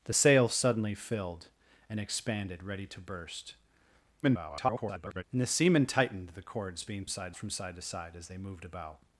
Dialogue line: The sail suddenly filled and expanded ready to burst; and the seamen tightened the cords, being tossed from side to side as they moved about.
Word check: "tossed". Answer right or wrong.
wrong